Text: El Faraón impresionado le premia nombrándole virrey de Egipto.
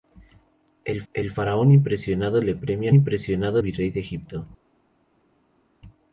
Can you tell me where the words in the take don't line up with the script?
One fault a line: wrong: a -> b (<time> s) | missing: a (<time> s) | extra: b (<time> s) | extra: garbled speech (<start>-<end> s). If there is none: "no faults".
extra: el (1.1 s)
wrong: nombrándole -> impresionado (2.9 s)